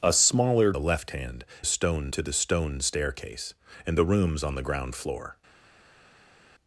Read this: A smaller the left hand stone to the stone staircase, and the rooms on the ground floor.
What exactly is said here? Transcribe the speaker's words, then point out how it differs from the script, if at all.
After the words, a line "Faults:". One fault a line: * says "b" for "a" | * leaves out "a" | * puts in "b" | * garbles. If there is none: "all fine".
A smaller the left hand stone to the stone staircase, and the rooms on the ground floor.
Faults:
all fine